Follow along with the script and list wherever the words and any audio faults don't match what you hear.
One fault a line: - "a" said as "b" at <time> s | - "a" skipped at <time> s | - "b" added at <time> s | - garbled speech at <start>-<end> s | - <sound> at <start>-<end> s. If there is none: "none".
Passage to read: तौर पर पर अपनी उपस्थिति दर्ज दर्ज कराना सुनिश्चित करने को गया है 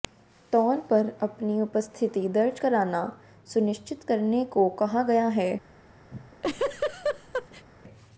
- "पर" skipped at 1.1 s
- "दर्ज" skipped at 2.6 s
- "कहा" added at 4.8 s
- laugh at 6.1-7.7 s